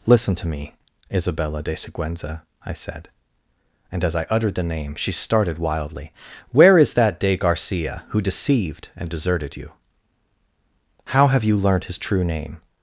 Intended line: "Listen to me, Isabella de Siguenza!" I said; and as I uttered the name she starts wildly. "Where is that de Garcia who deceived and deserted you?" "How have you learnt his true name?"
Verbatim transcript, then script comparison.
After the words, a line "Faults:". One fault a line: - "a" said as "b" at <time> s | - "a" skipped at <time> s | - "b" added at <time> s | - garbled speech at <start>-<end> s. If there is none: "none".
"Listen to me, Isabella de Siguenza!" I said; and as I uttered the name she started wildly. "Where is that de Garcia who deceived and deserted you?" "How have you learnt his true name?"
Faults:
- "starts" said as "started" at 5.1 s